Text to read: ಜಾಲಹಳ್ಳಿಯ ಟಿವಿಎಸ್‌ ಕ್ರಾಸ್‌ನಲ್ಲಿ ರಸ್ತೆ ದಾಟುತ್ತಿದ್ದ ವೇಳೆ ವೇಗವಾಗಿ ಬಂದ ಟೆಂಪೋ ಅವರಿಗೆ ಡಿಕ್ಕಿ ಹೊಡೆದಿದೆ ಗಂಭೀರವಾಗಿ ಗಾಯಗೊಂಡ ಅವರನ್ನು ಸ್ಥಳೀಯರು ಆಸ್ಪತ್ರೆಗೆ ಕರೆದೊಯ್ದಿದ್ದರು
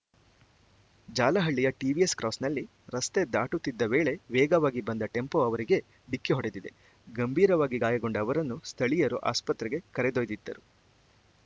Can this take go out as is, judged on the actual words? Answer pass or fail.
pass